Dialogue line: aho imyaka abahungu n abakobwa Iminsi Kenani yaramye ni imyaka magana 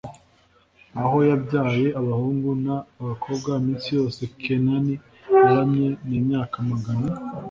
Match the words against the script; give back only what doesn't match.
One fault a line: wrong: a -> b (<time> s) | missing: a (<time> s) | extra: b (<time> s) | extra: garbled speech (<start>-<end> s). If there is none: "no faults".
wrong: imyaka -> yabyaye (1.3 s)
extra: yose (4.0 s)